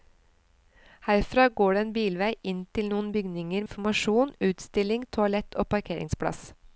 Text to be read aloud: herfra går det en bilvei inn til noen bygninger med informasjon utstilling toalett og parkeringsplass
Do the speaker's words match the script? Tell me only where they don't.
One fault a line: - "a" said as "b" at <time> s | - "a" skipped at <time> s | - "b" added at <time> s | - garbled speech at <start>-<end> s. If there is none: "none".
- "med" skipped at 3.6 s